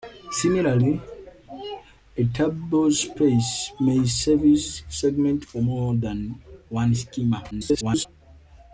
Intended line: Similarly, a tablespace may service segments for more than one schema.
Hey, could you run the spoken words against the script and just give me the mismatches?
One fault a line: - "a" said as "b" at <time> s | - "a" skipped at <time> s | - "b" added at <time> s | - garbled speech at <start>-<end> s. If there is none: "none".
- garbled speech at 7.5-8.1 s